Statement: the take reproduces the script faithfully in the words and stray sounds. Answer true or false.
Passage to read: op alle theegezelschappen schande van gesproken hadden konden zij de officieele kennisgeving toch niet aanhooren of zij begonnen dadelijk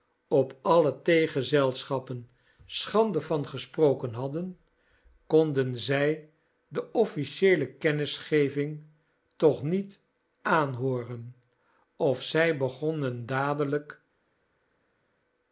true